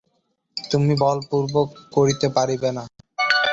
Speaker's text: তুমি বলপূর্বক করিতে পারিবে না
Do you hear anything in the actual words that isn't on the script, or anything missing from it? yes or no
no